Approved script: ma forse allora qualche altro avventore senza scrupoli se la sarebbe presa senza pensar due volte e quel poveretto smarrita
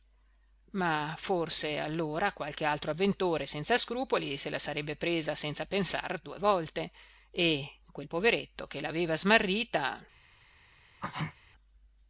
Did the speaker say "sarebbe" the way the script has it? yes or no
yes